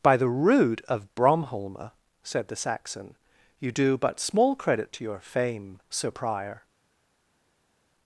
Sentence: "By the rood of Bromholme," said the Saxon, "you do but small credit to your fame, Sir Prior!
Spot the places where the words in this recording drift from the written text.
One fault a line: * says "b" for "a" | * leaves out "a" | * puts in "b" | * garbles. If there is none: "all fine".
all fine